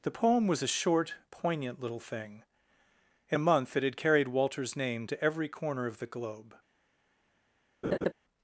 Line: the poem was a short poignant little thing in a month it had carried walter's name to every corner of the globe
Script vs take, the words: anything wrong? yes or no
no